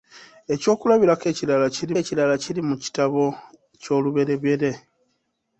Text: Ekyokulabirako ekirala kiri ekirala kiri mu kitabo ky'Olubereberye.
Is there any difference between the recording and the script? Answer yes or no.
no